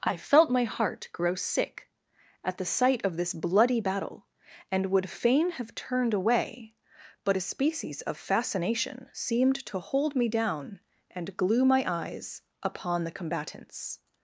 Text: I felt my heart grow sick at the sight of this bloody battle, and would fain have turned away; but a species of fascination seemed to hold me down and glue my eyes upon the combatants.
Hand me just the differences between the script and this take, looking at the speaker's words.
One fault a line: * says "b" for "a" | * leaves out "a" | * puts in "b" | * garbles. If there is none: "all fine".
all fine